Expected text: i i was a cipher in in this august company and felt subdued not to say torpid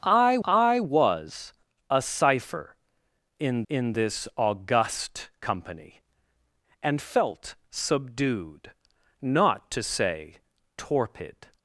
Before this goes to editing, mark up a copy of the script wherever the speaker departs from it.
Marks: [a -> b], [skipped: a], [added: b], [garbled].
i i was a cipher in in this august company and felt subdued not to say torpid